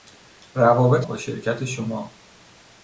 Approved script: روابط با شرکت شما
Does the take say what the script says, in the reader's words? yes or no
yes